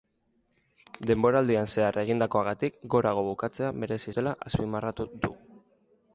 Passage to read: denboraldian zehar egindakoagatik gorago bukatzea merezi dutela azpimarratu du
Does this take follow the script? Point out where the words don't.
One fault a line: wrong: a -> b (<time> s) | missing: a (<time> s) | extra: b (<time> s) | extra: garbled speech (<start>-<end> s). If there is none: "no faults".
no faults